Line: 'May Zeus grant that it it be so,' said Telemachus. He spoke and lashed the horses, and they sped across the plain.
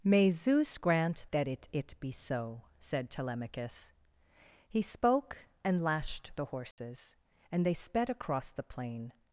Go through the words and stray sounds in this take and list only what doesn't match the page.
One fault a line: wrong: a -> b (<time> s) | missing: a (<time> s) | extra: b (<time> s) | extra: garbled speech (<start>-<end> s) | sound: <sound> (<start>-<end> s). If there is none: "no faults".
sound: dropout (6.7-6.8 s)